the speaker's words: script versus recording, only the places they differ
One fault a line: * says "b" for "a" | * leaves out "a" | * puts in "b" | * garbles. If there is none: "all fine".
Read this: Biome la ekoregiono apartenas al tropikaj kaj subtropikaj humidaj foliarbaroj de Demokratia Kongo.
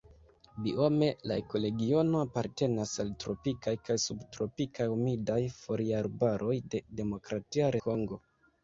all fine